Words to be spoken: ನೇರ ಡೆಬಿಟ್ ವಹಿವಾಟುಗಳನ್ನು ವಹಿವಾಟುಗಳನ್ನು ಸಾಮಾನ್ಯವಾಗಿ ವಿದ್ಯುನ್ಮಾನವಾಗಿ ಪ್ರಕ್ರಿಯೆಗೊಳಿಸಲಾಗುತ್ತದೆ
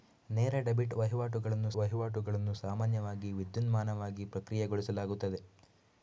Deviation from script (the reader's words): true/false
false